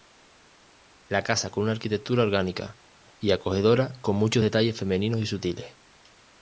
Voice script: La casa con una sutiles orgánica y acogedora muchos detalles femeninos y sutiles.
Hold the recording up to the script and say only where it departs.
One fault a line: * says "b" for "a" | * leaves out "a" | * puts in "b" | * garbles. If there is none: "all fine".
* says "arquitectura" for "sutiles"
* puts in "con"